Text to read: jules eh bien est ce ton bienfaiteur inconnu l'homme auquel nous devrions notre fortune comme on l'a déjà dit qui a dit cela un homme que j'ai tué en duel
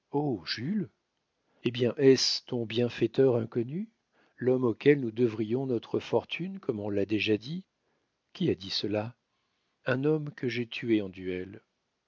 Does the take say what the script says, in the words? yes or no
yes